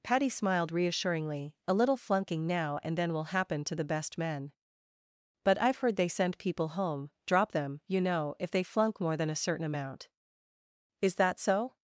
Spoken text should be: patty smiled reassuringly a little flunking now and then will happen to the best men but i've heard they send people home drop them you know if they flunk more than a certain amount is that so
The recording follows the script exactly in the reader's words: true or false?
true